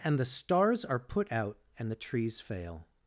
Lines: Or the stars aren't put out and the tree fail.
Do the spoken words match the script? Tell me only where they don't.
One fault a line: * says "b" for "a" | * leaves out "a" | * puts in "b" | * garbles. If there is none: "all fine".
* says "And" for "Or"
* says "are" for "aren't"
* says "trees" for "tree"